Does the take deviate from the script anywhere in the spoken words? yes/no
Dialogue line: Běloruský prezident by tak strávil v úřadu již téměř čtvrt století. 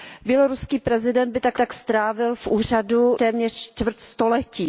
yes